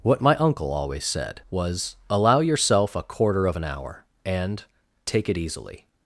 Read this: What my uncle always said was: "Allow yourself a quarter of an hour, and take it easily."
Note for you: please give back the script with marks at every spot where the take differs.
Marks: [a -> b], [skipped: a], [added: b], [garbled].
What my uncle always said was: "Allow yourself a quarter of an hour, and take it easily."